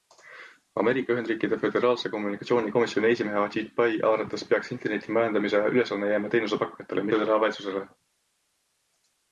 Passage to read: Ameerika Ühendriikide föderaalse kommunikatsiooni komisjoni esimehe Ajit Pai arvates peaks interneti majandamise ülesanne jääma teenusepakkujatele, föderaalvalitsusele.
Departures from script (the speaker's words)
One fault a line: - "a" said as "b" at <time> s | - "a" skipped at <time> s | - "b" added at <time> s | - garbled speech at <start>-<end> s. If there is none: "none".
none